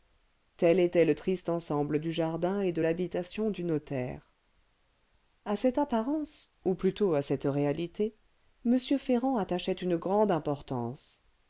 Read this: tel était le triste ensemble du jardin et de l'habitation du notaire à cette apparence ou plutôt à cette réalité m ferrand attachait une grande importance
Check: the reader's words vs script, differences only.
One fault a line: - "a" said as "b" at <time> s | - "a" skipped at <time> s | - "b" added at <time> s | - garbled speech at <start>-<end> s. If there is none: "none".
none